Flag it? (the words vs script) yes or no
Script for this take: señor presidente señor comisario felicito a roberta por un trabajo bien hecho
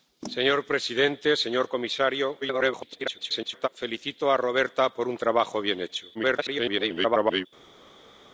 yes